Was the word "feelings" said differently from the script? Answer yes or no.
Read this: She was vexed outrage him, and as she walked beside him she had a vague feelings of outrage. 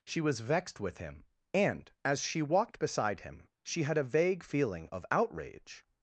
yes